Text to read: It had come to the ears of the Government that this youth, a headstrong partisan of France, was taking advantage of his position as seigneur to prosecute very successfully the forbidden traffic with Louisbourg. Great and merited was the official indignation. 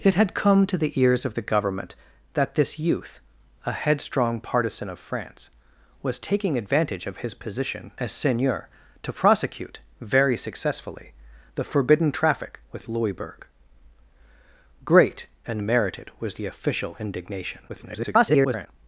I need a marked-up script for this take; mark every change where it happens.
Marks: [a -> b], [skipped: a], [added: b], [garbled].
It had come to the ears of the Government that this youth, a headstrong partisan of France, was taking advantage of his position as seigneur to prosecute very successfully the forbidden traffic with Louisbourg. Great and merited was the official indignation. [garbled]